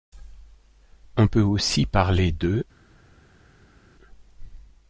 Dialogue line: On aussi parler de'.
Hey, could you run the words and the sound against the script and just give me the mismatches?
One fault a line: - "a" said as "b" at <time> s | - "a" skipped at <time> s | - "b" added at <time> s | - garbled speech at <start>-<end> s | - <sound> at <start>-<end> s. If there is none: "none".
- "peut" added at 1.2 s